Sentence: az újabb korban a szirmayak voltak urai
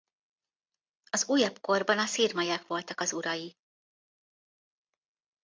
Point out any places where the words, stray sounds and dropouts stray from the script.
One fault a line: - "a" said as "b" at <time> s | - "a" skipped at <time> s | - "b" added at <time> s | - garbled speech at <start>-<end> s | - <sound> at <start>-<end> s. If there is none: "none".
- "az" added at 3.0 s